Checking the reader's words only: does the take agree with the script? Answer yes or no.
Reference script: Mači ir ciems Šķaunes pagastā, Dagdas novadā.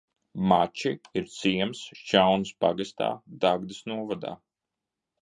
yes